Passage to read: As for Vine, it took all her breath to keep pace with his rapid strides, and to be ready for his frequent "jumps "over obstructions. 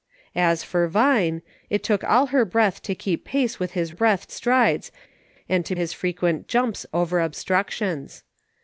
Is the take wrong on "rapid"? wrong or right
wrong